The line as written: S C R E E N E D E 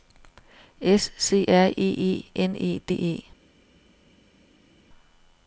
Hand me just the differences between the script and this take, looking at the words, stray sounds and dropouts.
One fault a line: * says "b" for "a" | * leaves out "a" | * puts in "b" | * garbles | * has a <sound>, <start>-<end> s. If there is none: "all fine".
all fine